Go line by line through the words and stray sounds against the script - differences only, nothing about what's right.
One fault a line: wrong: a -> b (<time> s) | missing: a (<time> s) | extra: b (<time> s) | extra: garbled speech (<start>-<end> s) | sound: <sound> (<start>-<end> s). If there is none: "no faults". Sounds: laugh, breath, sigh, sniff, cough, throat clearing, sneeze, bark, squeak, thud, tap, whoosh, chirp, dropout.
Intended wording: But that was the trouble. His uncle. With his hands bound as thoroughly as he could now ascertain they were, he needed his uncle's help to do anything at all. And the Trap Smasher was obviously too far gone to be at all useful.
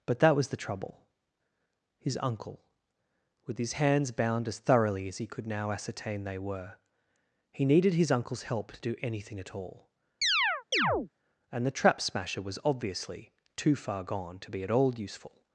sound: chirp (10.2-11.1 s)